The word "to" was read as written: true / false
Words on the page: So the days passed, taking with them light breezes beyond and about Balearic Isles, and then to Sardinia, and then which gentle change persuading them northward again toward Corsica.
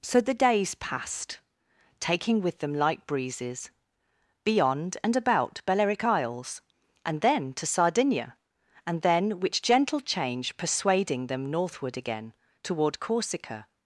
true